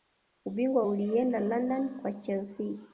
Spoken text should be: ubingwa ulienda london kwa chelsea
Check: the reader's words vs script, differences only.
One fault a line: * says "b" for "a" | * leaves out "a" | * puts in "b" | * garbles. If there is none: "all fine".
all fine